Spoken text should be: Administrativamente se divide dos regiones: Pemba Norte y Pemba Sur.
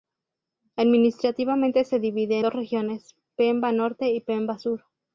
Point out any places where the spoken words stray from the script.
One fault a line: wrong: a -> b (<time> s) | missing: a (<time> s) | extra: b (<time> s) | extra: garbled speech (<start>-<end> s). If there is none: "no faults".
no faults